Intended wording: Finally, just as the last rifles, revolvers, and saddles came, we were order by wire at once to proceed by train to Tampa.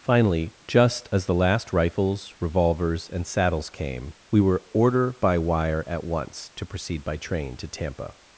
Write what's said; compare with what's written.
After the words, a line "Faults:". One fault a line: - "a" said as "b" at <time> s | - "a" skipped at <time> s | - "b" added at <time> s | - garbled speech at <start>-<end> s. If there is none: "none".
Finally, just as the last rifles, revolvers, and saddles came, we were order by wire at once to proceed by train to Tampa.
Faults:
none